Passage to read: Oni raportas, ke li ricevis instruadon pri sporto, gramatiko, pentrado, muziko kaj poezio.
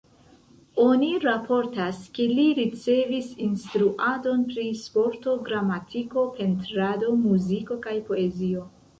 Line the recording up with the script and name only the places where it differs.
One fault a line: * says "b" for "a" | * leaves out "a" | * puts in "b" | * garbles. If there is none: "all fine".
all fine